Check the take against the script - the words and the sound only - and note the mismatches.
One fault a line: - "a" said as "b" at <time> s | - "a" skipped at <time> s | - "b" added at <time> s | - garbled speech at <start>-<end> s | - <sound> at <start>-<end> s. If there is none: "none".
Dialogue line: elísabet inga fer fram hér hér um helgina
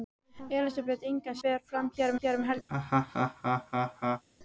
- laugh at 2.7-4.2 s